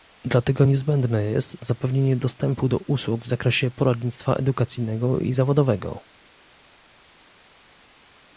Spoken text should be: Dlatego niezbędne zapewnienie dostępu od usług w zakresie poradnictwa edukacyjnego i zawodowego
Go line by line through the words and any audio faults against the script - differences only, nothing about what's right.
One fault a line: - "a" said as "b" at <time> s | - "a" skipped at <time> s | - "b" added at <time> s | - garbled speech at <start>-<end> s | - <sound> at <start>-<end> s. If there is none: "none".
- "jest" added at 1.2 s
- "od" said as "do" at 2.7 s